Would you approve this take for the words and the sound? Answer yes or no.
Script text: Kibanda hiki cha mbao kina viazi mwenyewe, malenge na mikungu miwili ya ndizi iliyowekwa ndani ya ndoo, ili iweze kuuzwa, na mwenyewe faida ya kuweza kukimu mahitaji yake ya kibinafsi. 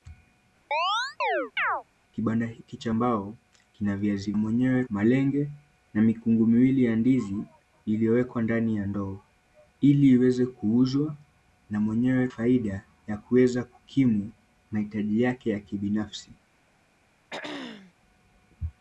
no